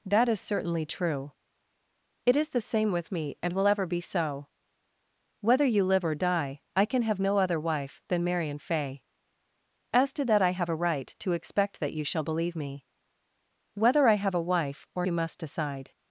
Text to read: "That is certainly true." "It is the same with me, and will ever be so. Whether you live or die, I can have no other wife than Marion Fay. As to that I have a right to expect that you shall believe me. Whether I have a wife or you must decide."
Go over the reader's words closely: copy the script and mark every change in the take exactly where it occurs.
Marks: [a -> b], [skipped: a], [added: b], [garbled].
"That is certainly true." "It is the same with me, and will ever be so. Whether you live or die, I can have no other wife than Marion Fay. As to that I have a right to expect that you shall believe me. Whether I have a wife or you must decide."